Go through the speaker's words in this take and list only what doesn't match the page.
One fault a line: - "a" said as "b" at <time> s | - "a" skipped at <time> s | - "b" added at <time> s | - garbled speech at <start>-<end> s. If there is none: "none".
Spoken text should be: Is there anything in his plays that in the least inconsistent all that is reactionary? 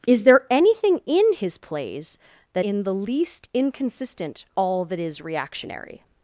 none